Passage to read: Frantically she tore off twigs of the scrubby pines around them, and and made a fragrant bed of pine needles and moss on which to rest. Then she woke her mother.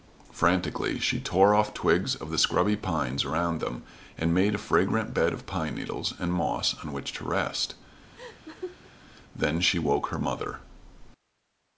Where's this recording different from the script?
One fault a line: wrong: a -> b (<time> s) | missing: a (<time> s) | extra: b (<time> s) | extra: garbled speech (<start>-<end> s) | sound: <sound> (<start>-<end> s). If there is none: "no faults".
missing: and (4.3 s)
sound: laugh (8.2-8.9 s)